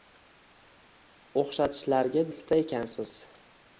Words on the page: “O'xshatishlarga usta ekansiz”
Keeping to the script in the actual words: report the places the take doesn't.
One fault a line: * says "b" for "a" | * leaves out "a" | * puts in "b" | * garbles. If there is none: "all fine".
all fine